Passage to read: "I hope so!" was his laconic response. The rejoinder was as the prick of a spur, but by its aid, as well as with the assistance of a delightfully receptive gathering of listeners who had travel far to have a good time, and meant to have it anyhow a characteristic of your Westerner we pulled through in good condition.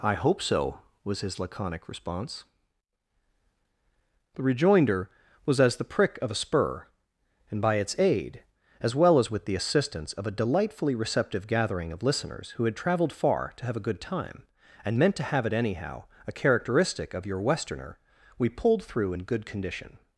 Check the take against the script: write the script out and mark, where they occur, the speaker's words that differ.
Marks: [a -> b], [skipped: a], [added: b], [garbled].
"I hope so!" was his laconic response. The rejoinder was as the prick of a spur, [but -> and] by its aid, as well as with the assistance of a delightfully receptive gathering of listeners who had [travel -> traveled] far to have a good time, and meant to have it anyhow a characteristic of your Westerner we pulled through in good condition.